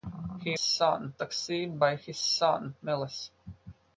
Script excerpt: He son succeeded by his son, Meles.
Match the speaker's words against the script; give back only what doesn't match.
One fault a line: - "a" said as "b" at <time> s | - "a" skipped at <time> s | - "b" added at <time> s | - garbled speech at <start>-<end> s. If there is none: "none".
none